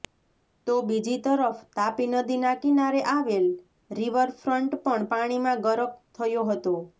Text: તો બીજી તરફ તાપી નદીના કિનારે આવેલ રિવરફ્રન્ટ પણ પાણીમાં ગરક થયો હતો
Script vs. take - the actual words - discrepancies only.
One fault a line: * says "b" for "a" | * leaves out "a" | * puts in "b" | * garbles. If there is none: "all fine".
all fine